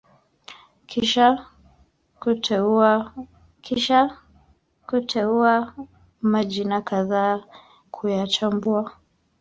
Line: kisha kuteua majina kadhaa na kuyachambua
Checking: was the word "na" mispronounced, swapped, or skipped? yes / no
yes